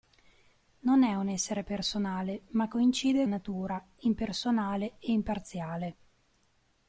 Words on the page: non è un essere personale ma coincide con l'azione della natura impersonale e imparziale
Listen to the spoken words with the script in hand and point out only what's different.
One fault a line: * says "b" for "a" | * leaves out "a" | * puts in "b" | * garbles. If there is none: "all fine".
* leaves out "con l'azione della"